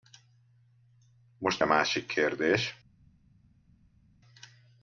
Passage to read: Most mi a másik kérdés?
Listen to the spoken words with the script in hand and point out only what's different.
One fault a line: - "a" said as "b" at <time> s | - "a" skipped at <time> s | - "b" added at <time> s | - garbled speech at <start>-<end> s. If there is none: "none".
- "mi" skipped at 1.6 s